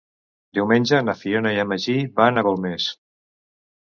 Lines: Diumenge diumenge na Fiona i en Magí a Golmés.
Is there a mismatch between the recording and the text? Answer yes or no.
yes